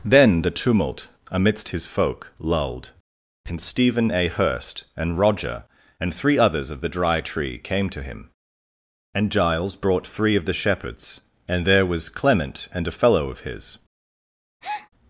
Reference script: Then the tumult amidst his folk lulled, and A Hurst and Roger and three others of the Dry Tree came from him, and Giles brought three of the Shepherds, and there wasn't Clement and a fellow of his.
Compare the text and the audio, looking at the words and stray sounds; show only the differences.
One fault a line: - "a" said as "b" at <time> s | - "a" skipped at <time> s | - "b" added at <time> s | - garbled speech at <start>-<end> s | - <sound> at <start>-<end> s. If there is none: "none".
- "Stephen" added at 3.6 s
- "from" said as "to" at 7.9 s
- "wasn't" said as "was" at 11.8 s
- breath at 14.6-14.9 s